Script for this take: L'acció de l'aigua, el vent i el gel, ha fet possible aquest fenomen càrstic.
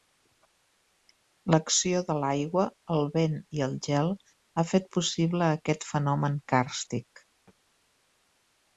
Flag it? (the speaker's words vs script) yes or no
no